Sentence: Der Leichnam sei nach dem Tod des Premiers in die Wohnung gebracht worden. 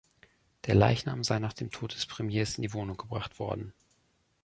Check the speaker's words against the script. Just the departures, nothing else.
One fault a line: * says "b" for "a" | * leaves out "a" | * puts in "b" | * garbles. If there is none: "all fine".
all fine